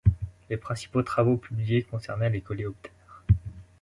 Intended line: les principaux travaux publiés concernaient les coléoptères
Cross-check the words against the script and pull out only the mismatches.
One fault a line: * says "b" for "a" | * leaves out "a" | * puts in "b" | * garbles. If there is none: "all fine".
all fine